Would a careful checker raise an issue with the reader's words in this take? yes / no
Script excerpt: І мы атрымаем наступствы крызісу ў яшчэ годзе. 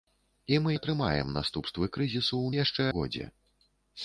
no